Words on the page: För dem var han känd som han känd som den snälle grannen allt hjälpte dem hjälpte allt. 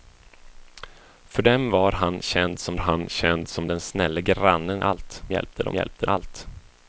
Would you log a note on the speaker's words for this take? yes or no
no